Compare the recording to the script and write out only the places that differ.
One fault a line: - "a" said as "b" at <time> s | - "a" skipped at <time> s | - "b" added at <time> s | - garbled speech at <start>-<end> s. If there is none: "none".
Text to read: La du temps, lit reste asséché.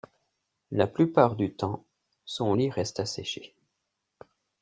- "plupart" added at 0.9 s
- "son" added at 2.2 s